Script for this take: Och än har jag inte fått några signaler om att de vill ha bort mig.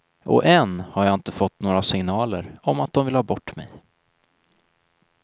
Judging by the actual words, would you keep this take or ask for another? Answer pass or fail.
pass